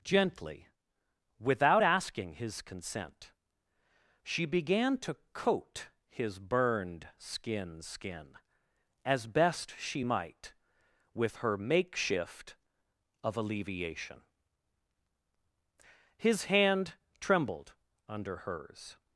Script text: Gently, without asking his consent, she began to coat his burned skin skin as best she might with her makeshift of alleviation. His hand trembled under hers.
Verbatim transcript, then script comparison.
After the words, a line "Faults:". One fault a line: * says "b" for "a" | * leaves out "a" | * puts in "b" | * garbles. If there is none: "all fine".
Gently, without asking his consent, she began to coat his burned skin skin as best she might with her makeshift of alleviation. His hand trembled under hers.
Faults:
all fine